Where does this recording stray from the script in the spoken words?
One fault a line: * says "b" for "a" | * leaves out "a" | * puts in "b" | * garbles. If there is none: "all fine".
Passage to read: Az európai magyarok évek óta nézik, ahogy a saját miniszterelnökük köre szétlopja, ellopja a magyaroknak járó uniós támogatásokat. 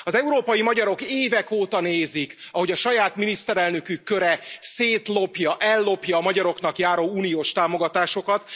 all fine